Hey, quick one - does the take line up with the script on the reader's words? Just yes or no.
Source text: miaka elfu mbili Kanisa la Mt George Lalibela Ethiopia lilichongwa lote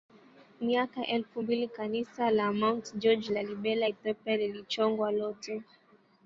yes